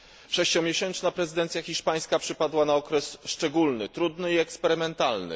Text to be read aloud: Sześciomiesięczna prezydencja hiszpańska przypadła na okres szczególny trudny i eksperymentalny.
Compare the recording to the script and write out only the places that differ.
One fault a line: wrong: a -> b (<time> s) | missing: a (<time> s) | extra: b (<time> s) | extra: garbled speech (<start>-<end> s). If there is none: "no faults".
no faults